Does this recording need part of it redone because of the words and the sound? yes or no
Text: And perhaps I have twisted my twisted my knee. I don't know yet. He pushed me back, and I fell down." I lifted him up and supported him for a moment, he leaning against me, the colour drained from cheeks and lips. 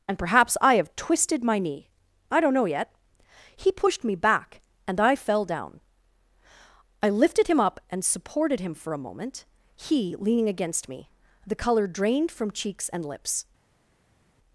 yes